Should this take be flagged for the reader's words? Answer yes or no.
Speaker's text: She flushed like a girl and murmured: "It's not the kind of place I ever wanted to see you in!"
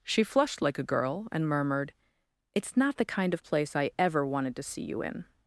no